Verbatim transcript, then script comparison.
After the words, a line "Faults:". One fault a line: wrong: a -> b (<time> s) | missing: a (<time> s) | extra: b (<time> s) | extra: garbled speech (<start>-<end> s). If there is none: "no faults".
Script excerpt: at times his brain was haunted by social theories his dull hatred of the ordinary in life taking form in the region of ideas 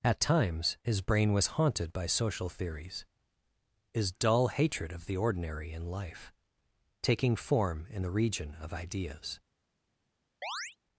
at times his brain was haunted by social theories his dull hatred of the ordinary in life taking form in the region of ideas
Faults:
no faults